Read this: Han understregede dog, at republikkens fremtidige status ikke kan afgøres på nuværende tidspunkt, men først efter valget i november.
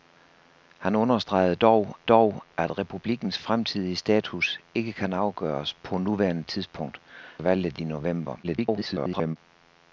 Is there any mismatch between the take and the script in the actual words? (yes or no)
yes